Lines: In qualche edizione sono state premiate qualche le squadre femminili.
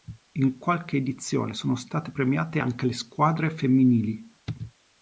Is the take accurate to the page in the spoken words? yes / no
no